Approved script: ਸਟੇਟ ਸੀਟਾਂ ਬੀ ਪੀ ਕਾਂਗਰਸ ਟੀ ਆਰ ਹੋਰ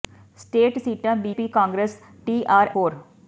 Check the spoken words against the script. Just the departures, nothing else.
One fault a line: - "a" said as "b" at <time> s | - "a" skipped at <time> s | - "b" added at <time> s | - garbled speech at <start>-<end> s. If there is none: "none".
none